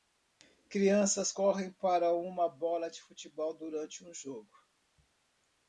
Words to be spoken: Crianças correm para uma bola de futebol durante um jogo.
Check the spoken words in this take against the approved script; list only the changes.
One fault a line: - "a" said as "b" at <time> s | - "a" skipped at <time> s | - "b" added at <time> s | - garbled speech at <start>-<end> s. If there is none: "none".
none